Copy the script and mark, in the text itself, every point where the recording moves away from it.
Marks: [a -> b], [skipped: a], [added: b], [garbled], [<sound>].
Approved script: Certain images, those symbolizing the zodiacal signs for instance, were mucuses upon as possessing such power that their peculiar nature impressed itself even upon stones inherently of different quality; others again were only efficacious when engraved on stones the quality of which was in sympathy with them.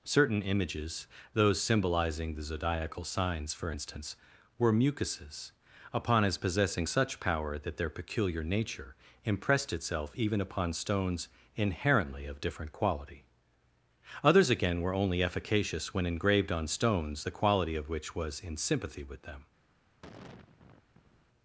Certain images, those symbolizing the zodiacal signs for instance, were mucuses upon as possessing such power that their peculiar nature impressed itself even upon stones inherently of different quality; others again were only efficacious when engraved on stones the quality of which was in sympathy with them. [sigh]